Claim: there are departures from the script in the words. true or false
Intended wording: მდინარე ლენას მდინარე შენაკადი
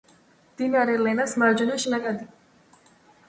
true